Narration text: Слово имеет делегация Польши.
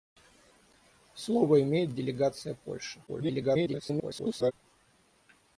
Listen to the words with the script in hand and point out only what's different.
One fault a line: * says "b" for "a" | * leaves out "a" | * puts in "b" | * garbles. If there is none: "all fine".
* garbles